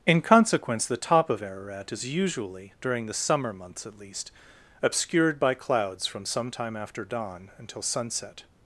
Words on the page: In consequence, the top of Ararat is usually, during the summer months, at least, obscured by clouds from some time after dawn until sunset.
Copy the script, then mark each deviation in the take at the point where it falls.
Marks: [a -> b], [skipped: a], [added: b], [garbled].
In consequence, the top of Ararat is usually, during the summer months, at least, obscured by clouds from some time after dawn until sunset.